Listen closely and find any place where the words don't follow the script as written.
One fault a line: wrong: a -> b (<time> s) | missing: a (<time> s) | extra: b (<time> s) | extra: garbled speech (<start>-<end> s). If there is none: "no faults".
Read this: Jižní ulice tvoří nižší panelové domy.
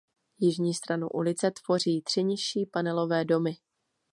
extra: stranu (0.7 s)
extra: tři (2.0 s)